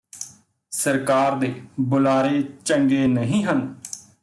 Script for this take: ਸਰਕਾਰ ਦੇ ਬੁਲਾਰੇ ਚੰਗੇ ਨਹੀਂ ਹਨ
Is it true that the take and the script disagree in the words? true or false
false